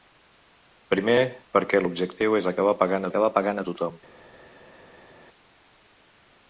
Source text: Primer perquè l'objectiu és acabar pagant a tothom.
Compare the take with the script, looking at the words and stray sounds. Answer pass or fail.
fail